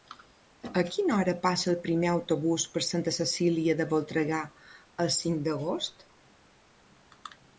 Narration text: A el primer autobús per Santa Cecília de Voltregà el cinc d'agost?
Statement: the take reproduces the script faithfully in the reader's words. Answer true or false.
false